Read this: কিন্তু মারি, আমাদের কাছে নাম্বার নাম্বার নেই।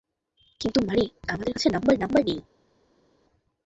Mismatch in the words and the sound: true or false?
false